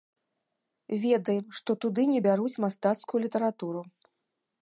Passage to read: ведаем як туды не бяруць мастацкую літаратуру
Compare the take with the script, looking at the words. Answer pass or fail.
fail